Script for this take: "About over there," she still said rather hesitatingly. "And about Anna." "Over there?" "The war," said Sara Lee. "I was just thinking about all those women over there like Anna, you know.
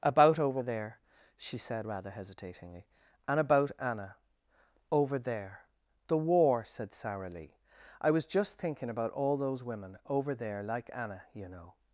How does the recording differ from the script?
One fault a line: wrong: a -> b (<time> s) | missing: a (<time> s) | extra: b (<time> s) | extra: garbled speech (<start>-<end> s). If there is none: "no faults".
missing: still (1.6 s)